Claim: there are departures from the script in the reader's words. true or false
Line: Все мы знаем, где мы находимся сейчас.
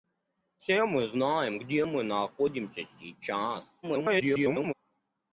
true